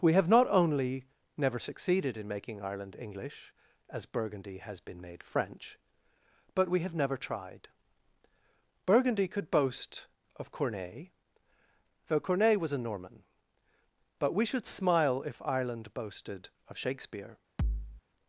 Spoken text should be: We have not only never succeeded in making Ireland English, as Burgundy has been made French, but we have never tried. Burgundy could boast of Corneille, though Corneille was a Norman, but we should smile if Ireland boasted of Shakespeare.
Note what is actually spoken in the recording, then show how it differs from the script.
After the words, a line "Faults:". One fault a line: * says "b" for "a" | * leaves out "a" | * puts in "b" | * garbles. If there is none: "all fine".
We have not only never succeeded in making Ireland English, as Burgundy has been made French, but we have never tried. Burgundy could boast of Corneille, though Corneille was a Norman, but we should smile if Ireland boasted of Shakespeare.
Faults:
all fine